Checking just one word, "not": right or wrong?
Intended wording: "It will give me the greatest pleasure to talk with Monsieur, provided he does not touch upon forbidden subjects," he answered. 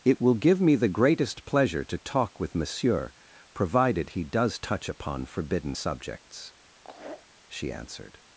wrong